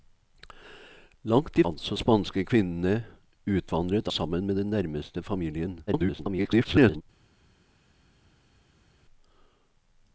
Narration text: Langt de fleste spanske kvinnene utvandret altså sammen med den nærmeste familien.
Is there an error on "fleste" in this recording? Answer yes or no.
yes